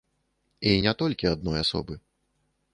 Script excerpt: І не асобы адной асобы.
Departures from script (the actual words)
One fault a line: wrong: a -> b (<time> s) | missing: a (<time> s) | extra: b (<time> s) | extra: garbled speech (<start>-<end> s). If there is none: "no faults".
wrong: асобы -> толькі (1.0 s)